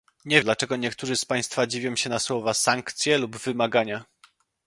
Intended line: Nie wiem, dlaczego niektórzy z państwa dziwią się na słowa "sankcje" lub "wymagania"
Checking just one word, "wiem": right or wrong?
wrong